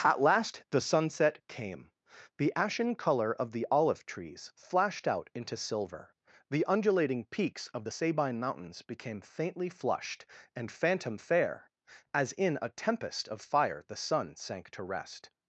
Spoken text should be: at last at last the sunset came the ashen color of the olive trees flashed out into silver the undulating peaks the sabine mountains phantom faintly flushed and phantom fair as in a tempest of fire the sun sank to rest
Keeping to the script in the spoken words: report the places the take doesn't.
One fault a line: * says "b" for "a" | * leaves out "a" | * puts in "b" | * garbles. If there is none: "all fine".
* leaves out "at last"
* puts in "of"
* says "became" for "phantom"